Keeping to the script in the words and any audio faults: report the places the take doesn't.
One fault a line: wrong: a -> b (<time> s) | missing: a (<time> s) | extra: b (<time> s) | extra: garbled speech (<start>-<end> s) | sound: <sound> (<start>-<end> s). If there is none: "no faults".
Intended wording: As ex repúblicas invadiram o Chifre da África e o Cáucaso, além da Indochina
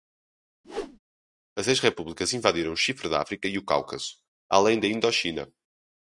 sound: whoosh (0.6-1.0 s)